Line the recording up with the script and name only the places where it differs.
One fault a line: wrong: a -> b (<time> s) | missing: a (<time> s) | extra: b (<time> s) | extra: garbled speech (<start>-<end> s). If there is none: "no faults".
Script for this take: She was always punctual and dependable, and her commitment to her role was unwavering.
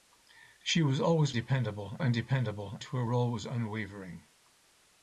wrong: punctual -> dependable (1.3 s)
missing: and her commitment (2.8 s)